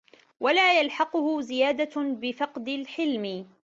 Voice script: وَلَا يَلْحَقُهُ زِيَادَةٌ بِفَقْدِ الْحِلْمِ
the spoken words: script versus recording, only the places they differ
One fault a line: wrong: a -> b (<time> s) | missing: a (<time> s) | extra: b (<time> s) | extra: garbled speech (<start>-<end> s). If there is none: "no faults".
no faults